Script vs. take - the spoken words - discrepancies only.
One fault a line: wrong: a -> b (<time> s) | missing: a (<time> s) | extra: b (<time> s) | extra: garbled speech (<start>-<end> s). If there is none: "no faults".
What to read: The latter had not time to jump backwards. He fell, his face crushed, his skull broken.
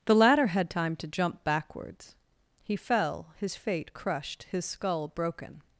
missing: not (0.7 s)
wrong: face -> fate (3.5 s)